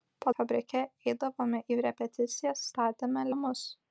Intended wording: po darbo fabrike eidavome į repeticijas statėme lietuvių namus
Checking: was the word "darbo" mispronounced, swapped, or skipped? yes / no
yes